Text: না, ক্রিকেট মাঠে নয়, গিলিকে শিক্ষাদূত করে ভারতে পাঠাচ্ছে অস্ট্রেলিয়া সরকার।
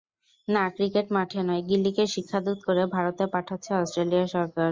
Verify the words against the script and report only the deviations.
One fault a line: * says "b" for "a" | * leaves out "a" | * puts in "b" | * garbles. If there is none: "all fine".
all fine